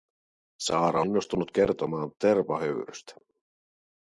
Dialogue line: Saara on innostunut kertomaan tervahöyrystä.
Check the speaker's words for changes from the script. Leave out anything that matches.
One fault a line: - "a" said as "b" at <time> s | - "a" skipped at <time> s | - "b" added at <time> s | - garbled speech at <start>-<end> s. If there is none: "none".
- "on" skipped at 1.0 s